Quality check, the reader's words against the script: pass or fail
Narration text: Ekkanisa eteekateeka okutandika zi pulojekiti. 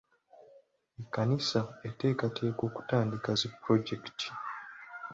pass